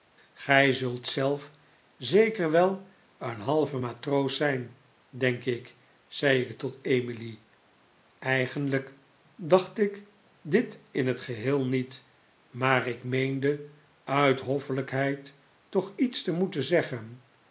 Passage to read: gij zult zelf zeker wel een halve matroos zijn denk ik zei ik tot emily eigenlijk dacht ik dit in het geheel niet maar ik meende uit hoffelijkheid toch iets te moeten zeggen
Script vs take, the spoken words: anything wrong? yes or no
no